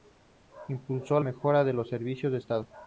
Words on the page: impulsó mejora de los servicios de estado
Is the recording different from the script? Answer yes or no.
no